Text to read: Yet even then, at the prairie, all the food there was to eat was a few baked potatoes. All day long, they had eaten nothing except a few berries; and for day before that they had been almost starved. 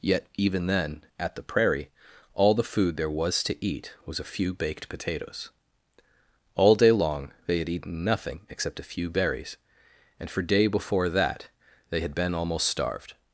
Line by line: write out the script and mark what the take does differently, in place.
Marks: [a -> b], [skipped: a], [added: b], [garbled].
Yet even then, at the prairie, all the food there was to eat was a few baked potatoes. All day long, they had eaten nothing except a few berries; and for day before that they had been almost starved.